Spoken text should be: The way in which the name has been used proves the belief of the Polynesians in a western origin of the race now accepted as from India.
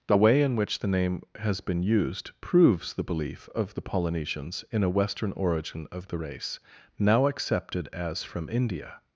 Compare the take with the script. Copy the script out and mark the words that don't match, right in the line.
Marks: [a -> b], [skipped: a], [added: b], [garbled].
The way in which the name has been used proves the belief of the Polynesians in a western origin of the race now accepted as from India.